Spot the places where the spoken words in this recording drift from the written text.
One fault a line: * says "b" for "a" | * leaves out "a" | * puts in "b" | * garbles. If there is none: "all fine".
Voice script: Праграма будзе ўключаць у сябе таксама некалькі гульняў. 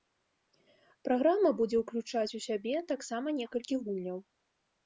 all fine